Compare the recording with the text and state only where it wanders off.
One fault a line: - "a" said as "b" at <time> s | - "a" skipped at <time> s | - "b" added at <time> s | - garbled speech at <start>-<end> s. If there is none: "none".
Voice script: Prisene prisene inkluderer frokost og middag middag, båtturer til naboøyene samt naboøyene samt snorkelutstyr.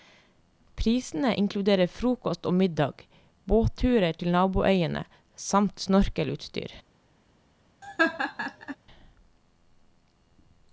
- "prisene" skipped at 1.3 s
- "middag" skipped at 3.0 s
- "naboøyene samt" skipped at 5.9 s